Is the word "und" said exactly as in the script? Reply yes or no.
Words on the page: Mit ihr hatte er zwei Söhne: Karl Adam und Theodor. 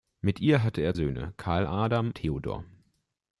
no